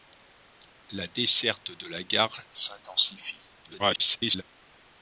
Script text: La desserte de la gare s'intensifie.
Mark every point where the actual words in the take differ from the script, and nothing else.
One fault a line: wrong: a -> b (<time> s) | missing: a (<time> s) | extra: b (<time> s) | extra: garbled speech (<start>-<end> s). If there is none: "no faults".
extra: garbled speech (3.6-4.4 s)